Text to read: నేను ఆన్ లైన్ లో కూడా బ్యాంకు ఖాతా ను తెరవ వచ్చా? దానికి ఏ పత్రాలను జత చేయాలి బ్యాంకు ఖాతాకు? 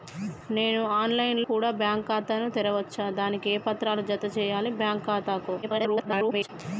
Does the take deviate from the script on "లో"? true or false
true